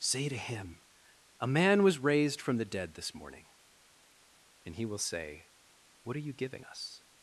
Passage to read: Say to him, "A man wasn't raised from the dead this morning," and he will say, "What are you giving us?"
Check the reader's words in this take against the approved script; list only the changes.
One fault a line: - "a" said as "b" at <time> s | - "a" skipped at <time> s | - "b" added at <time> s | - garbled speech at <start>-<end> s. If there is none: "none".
- "wasn't" said as "was" at 1.8 s